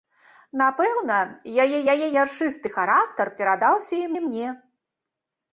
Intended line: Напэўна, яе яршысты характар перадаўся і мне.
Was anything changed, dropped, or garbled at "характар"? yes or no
no